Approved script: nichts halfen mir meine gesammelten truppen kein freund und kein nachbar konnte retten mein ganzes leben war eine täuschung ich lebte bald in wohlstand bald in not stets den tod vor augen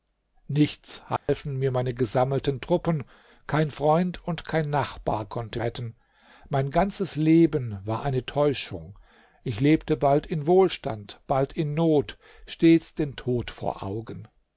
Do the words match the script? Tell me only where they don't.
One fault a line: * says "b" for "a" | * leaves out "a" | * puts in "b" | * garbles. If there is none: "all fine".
all fine